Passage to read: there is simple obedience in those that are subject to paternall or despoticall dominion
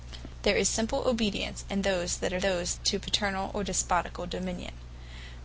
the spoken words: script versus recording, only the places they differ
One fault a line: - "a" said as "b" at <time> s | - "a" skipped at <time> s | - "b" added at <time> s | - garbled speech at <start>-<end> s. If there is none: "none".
- "subject" said as "those" at 2.4 s